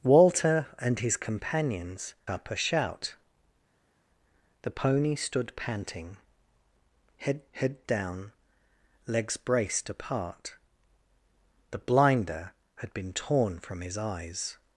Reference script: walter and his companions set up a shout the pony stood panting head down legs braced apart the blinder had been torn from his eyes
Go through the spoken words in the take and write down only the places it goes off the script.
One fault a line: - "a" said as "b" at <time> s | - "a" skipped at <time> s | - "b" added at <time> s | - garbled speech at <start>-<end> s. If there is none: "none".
- "set" skipped at 2.1 s
- "head" added at 7.5 s